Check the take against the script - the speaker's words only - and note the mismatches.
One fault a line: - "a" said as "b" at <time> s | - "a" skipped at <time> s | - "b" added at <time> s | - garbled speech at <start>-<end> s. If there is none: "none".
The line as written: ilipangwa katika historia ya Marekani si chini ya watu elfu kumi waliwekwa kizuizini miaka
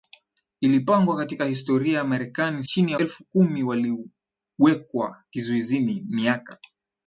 - "si" skipped at 2.6 s
- "watu" skipped at 3.0 s